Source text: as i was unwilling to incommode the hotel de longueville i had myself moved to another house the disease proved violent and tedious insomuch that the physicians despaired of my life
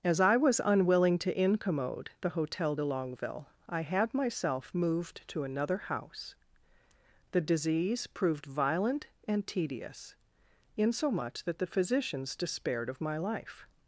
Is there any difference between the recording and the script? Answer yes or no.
no